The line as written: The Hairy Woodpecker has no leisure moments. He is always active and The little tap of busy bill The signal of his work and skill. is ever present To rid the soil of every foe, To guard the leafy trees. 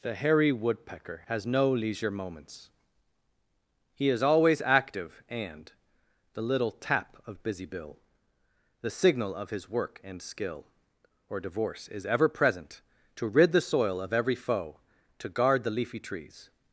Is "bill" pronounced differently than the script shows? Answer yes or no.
no